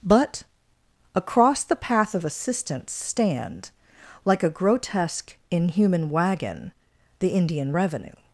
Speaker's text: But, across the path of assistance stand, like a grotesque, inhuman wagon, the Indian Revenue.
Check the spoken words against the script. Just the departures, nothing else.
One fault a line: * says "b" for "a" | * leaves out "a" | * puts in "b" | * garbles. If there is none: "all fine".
all fine